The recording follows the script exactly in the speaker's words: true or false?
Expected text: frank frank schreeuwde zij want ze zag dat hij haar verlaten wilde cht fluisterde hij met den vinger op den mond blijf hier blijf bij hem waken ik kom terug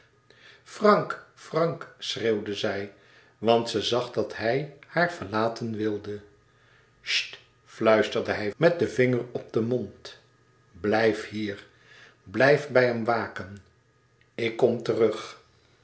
true